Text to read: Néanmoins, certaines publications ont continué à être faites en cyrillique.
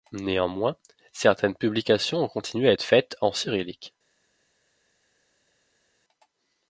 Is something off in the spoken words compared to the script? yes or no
no